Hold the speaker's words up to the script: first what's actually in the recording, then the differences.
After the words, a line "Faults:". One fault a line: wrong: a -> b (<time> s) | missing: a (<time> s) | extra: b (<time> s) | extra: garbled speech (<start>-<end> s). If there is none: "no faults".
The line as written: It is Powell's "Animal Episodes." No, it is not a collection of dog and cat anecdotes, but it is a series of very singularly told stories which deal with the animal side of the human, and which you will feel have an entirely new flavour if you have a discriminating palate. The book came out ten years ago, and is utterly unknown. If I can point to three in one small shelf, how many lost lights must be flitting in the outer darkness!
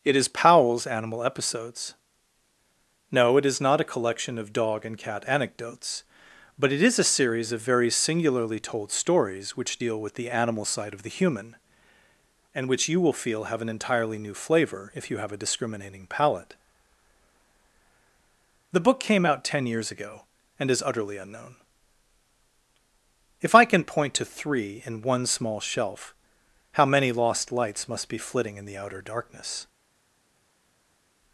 It is Powell's "Animal Episodes." No, it is not a collection of dog and cat anecdotes, but it is a series of very singularly told stories which deal with the animal side of the human, and which you will feel have an entirely new flavour if you have a discriminating palate. The book came out ten years ago, and is utterly unknown. If I can point to three in one small shelf, how many lost lights must be flitting in the outer darkness!
Faults:
no faults